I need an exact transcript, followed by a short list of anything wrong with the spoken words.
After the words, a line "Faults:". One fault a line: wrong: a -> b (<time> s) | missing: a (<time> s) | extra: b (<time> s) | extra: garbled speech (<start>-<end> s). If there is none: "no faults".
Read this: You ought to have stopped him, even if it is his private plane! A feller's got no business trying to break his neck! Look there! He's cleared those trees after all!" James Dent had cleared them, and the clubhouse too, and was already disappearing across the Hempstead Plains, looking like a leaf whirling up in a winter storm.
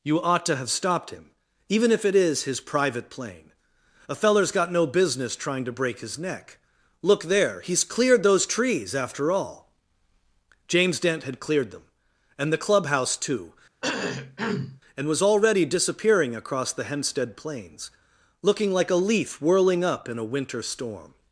You ought to have stopped him, even if it is his private plane! A feller's got no business trying to break his neck! Look there! He's cleared those trees after all!" James Dent had cleared them, and the clubhouse too, and was already disappearing across the Hempstead Plains, looking like a leaf whirling up in a winter storm.
Faults:
no faults